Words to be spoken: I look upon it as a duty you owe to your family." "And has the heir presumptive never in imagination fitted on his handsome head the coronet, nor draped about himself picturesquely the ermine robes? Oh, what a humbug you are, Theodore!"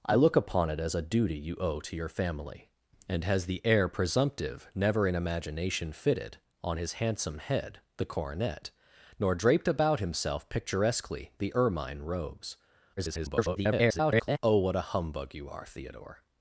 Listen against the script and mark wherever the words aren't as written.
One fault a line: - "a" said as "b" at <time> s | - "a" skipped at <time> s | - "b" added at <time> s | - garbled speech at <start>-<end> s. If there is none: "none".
- garbled speech at 13.0-14.4 s